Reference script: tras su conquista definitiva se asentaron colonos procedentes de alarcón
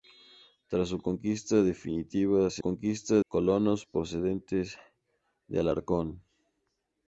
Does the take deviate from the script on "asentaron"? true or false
true